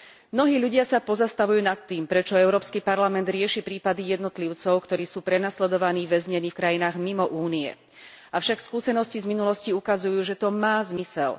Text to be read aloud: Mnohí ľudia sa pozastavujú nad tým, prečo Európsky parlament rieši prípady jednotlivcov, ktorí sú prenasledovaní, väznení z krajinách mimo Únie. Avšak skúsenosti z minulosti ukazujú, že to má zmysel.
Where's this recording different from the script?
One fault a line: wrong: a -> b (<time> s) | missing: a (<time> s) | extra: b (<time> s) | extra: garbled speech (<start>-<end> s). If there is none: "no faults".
wrong: z -> v (6.5 s)